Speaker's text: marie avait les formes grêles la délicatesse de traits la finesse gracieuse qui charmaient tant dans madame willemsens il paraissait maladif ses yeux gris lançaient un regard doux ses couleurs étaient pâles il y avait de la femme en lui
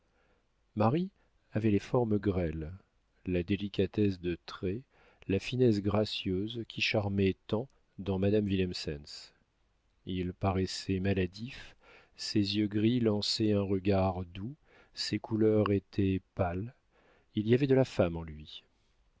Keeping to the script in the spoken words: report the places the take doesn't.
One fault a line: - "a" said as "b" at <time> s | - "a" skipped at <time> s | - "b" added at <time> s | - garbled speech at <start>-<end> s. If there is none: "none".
none